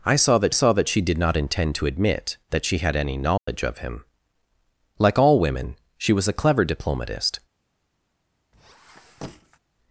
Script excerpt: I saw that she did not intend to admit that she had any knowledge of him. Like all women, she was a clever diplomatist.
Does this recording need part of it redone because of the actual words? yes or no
yes